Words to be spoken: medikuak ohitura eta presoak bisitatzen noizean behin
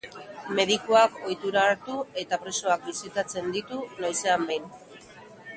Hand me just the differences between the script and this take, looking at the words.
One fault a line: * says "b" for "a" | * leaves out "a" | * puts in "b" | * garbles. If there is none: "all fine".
* puts in "hartu"
* puts in "ditu"